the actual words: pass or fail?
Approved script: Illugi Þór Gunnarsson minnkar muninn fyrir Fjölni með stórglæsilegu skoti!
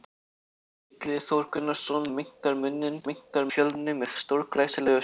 fail